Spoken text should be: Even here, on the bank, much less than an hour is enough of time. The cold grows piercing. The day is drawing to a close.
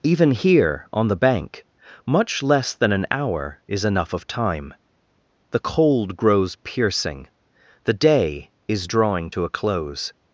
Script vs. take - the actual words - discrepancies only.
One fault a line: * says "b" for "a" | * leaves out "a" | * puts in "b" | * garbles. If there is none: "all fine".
all fine